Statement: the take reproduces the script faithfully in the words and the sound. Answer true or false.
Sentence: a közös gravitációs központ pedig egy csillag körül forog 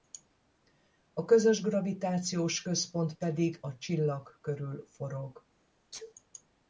false